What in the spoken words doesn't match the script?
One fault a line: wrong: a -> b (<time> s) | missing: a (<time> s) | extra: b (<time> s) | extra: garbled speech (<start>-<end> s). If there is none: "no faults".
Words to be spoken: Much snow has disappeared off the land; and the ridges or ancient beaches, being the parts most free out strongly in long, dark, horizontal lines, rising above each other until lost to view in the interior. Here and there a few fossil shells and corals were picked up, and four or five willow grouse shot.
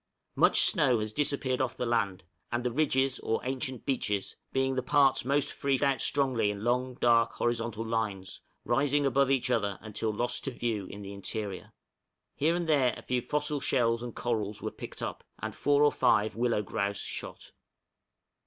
no faults